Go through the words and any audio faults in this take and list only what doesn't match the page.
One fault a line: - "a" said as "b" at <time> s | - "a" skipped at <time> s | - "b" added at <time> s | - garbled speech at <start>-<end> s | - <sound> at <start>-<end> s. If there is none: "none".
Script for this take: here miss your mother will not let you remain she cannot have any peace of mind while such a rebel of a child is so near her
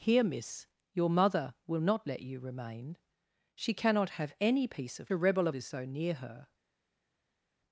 - "mind while such" skipped at 5.1 s
- "a child" skipped at 5.6 s